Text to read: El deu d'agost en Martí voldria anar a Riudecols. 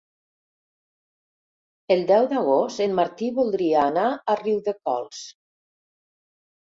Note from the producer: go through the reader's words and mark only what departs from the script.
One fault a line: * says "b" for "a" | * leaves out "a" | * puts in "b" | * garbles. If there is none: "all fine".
all fine